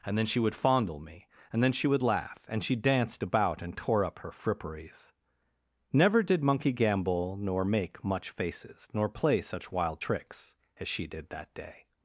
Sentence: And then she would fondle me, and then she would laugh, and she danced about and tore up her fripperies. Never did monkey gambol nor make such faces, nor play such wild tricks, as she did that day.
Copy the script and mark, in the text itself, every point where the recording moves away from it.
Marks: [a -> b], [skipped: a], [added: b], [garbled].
And then she would fondle me, and then she would laugh, and she danced about and tore up her fripperies. Never did monkey gambol nor make [such -> much] faces, nor play such wild tricks, as she did that day.